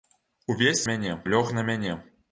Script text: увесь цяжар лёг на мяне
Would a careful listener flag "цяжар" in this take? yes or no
yes